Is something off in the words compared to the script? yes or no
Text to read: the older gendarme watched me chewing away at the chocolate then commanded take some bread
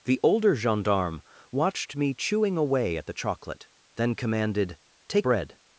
yes